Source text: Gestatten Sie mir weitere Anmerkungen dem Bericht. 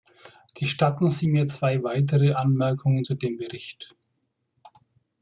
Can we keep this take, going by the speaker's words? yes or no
no